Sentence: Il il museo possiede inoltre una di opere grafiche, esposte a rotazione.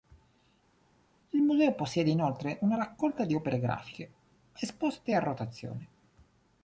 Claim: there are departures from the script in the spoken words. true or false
true